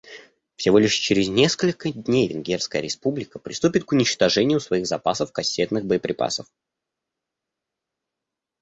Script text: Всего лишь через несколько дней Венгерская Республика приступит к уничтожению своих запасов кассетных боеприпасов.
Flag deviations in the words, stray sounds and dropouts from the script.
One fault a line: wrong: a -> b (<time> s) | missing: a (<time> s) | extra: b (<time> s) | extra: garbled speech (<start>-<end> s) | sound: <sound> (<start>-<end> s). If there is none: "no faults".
no faults